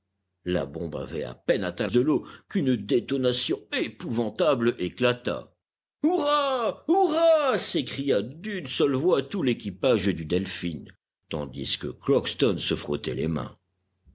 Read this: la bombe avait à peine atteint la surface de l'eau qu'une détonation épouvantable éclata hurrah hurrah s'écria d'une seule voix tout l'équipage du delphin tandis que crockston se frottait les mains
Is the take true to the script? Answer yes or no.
no